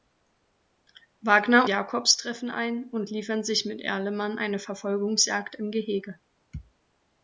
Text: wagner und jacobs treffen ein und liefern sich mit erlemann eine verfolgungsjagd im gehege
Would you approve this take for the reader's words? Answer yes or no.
no